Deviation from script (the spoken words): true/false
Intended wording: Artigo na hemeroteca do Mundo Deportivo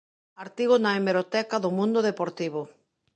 false